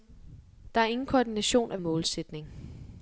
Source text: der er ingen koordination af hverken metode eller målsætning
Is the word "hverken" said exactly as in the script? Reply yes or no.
no